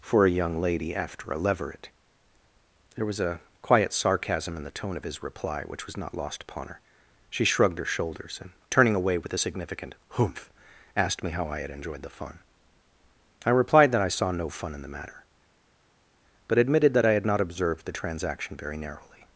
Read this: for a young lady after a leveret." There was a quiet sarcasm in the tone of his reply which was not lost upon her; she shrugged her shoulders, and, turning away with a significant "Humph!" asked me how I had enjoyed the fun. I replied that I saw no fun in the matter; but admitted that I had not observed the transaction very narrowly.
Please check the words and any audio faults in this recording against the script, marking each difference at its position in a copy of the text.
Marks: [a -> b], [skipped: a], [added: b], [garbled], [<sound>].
for a young lady after a leveret." There was a quiet sarcasm in the tone of his reply which was not lost upon her; she shrugged her shoulders, and, turning away with a significant "Humph!" asked me how I had enjoyed the fun. I replied that I saw no fun in the matter; but admitted that I had not observed the transaction very narrowly.